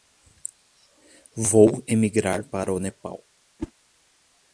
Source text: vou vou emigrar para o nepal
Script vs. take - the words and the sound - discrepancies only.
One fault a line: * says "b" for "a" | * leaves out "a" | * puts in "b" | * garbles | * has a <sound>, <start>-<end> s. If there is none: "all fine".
* leaves out "vou"
* has a whoosh, 3.6-3.7 s